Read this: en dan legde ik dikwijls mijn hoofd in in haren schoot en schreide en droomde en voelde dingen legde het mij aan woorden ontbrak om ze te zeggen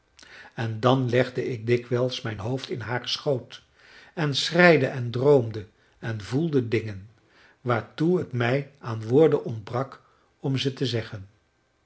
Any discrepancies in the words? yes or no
yes